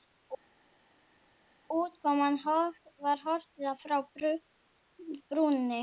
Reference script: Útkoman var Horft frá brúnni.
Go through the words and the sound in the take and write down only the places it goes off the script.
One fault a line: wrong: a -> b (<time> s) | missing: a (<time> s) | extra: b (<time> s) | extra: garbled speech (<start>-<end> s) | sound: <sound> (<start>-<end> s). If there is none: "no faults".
no faults